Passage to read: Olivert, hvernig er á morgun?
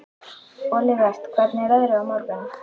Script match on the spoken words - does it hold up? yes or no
no